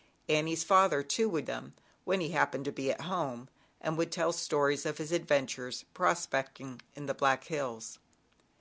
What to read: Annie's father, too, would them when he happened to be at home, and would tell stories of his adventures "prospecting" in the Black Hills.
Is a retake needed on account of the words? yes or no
no